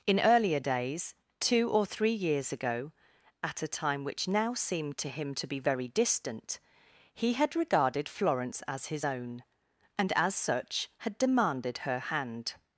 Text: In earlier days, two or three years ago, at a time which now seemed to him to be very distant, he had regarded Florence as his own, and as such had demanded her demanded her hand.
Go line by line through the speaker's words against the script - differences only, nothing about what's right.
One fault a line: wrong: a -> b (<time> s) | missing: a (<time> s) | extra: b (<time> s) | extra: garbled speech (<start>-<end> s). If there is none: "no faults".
missing: demanded her (12.0 s)